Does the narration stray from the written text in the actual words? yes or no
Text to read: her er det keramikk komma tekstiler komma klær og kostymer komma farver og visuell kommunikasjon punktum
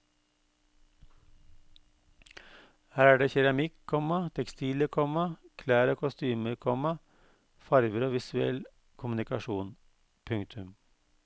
no